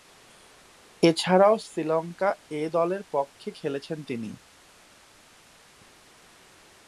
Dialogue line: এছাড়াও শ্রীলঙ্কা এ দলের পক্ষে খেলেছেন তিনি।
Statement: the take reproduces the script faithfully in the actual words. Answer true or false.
true